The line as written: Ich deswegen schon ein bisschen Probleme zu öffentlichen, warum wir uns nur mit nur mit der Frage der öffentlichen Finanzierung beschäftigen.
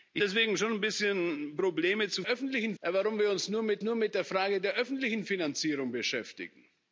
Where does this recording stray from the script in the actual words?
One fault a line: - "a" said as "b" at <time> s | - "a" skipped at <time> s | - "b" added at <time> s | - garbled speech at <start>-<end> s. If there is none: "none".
none